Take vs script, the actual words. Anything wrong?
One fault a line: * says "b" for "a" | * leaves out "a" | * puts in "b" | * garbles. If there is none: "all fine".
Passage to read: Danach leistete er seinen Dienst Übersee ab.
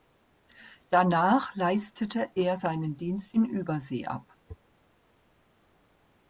* puts in "in"